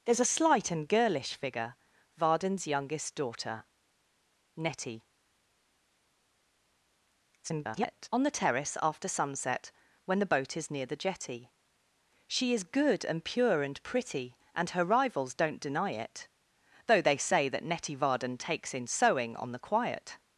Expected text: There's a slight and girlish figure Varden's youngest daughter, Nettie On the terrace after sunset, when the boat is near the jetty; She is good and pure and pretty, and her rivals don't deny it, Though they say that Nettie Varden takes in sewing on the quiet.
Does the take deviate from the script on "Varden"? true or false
false